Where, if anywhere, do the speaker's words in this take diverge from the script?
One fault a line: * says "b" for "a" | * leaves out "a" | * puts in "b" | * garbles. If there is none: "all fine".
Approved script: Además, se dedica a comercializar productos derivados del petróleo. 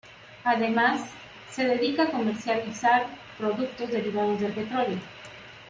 all fine